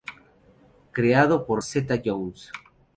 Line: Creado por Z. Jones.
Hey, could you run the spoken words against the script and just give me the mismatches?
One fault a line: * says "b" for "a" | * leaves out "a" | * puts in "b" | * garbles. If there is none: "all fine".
all fine